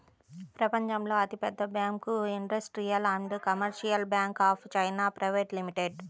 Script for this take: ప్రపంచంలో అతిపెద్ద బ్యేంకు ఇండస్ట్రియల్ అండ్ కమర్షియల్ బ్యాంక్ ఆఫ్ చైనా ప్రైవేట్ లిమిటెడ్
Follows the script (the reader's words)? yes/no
yes